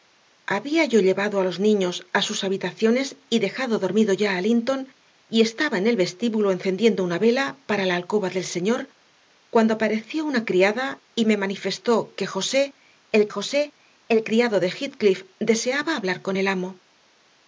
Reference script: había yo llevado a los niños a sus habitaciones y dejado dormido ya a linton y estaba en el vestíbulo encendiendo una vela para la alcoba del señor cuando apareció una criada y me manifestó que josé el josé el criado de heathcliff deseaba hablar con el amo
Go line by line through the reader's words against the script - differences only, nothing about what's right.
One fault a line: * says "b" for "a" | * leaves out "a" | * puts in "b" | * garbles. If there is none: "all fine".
all fine